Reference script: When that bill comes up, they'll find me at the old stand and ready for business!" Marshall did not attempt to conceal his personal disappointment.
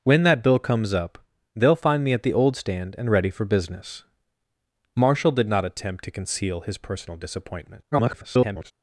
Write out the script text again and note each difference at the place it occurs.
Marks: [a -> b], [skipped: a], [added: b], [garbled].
When that bill comes up, they'll find me at the old stand and ready for business!" Marshall did not attempt to conceal his personal disappointment. [garbled]